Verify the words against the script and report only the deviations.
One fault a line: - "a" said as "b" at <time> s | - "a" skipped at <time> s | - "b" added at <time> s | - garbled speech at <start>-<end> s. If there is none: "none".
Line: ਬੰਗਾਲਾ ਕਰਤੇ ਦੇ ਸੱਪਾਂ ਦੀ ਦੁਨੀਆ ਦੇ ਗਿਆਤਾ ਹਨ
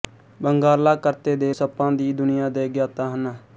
none